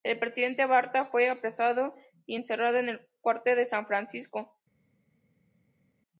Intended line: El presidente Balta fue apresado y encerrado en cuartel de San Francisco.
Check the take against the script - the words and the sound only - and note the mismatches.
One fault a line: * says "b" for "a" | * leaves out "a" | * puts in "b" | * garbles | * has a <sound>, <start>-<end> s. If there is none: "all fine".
* puts in "el"